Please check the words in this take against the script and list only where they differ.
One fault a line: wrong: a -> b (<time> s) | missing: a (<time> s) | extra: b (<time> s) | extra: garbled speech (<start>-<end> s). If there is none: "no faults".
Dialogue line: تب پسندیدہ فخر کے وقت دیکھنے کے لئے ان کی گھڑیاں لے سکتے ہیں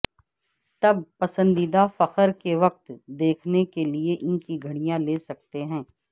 no faults